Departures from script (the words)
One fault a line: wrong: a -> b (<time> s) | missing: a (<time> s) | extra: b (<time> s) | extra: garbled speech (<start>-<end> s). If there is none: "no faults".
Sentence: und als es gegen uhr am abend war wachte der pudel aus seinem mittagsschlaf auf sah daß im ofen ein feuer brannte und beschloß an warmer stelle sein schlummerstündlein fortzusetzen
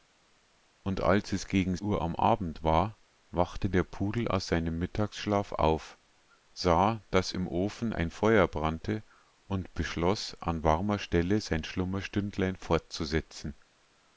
no faults